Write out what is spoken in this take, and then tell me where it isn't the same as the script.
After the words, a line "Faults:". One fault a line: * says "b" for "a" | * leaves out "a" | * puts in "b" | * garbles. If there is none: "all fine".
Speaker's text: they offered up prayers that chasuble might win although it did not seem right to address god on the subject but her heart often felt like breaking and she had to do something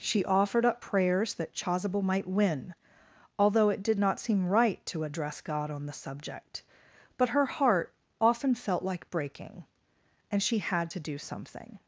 she offered up prayers that chasuble might win although it did not seem right to address god on the subject but her heart often felt like breaking and she had to do something
Faults:
* says "she" for "they"